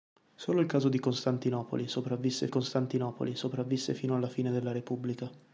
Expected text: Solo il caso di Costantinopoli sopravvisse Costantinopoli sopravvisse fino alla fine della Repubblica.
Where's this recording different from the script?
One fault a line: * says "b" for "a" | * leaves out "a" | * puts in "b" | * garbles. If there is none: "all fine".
all fine